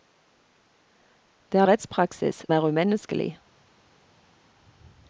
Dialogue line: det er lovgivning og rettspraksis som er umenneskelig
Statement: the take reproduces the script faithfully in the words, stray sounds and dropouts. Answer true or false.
false